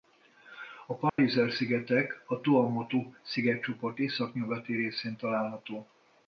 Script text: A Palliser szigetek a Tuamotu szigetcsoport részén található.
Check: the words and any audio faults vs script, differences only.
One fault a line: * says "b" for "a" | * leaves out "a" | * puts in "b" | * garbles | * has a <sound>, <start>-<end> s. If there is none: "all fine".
* has a dropout, 1.1-1.2 s
* puts in "északnyugati"